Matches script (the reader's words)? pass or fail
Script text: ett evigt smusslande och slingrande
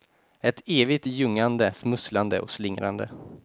fail